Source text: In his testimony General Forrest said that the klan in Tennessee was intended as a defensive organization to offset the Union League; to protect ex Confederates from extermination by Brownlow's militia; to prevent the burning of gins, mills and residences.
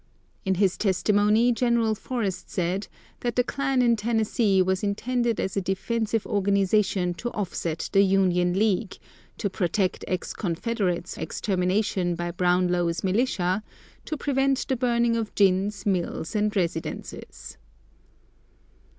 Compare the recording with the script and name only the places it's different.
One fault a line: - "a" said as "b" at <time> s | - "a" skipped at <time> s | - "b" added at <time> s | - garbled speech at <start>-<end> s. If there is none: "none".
- "from" skipped at 11.2 s